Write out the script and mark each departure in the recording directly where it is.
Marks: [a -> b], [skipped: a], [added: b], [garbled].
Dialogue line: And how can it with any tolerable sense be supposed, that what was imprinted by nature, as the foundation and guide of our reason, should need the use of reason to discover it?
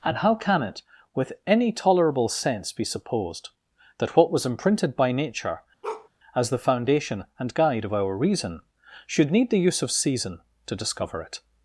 And how can it with any tolerable sense be supposed, that what was imprinted by nature, as the foundation and guide of our reason, should need the use of [reason -> season] to discover it?